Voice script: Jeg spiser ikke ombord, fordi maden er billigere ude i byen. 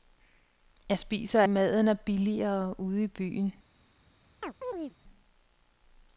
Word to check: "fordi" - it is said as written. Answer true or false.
false